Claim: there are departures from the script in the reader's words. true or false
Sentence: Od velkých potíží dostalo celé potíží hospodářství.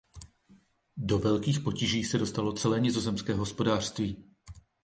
true